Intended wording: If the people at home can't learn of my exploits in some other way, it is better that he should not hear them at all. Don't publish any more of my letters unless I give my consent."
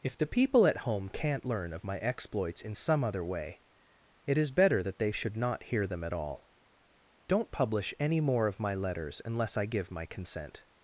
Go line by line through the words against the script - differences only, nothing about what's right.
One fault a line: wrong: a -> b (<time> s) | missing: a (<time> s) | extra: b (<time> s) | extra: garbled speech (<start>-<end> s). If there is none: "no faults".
wrong: he -> they (5.0 s)